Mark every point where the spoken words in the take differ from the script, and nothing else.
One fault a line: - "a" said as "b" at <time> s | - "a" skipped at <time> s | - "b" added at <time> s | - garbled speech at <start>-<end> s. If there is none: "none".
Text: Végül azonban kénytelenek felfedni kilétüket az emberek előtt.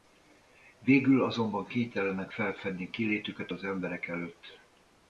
none